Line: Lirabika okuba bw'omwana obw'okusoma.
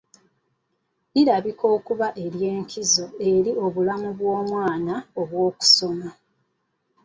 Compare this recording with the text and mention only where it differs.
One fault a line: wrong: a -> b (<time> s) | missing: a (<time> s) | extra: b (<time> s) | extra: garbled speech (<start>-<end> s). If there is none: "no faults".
extra: ery'enkizo eri obulamu (2.2 s)